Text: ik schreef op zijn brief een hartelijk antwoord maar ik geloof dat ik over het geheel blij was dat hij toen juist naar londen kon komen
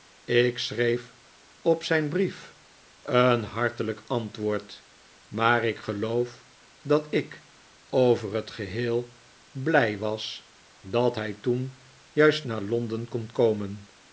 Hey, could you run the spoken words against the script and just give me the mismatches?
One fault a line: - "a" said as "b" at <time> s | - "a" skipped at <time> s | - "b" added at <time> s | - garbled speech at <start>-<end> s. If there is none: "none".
none